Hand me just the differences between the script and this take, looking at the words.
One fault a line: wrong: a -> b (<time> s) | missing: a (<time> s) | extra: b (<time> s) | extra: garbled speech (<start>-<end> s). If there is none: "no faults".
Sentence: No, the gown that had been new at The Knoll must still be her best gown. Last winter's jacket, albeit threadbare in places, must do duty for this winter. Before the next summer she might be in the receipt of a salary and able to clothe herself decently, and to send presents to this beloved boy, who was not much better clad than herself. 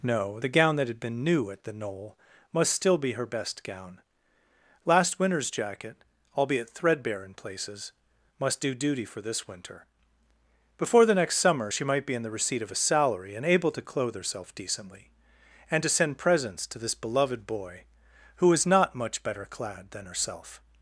no faults